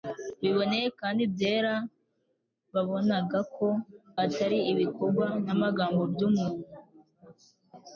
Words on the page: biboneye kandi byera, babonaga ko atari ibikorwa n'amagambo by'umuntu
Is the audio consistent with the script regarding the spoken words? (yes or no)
yes